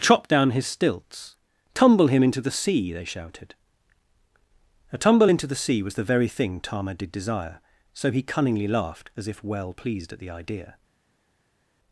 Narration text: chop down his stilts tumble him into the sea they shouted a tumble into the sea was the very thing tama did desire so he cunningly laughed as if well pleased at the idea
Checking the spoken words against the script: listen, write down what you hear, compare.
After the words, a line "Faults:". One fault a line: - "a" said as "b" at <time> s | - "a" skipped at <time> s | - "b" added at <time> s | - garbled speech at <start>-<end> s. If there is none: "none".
chop down his stilts tumble him into the sea they shouted a tumble into the sea was the very thing tama did desire so he cunningly laughed as if well pleased at the idea
Faults:
none